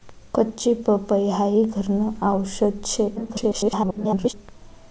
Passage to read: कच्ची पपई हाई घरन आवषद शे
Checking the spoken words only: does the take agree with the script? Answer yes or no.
no